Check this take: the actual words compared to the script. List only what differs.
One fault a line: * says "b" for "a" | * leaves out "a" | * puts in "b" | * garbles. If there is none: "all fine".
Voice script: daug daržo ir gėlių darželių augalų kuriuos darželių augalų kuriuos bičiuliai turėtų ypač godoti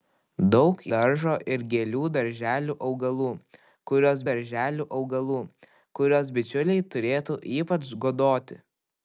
all fine